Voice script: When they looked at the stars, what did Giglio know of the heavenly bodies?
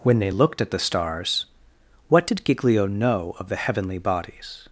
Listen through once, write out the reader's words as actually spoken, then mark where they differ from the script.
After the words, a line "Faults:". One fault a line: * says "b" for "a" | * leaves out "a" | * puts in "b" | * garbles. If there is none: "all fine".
When they looked at the stars, what did Giglio know of the heavenly bodies?
Faults:
all fine